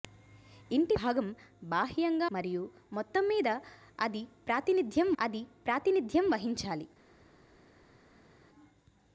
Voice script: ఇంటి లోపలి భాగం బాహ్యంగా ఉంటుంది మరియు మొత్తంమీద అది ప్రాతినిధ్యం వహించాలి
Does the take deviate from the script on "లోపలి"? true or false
true